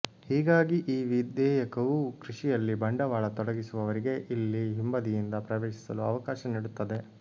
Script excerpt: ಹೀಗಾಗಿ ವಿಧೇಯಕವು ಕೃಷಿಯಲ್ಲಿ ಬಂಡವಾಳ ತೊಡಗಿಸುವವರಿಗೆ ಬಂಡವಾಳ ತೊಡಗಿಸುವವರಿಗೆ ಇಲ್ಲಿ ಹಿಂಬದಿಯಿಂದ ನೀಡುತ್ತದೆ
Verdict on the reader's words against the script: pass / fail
fail